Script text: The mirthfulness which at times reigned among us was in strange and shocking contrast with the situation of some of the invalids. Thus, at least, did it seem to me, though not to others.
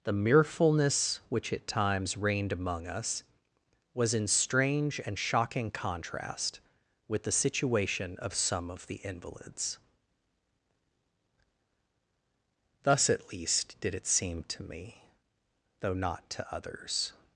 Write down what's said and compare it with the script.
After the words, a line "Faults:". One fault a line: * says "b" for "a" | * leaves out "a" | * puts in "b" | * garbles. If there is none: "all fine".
The mirthfulness which at times reigned among us was in strange and shocking contrast with the situation of some of the invalids. Thus, at least, did it seem to me, though not to others.
Faults:
all fine